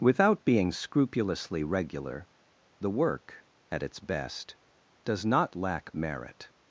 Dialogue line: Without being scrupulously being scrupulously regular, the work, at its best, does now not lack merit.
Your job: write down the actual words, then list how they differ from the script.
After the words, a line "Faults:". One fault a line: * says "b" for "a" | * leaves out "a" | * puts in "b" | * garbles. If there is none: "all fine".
Without being scrupulously regular, the work, at its best, does not lack merit.
Faults:
* leaves out "being scrupulously"
* leaves out "now"